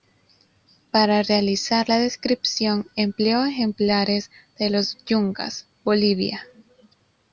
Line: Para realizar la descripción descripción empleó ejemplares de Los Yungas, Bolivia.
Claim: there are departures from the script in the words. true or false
true